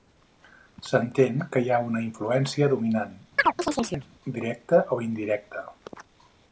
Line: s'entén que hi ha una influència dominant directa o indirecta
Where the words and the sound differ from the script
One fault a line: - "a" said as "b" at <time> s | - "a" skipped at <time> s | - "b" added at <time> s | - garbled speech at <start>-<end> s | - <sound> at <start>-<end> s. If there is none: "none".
- chirp at 3.4-4.1 s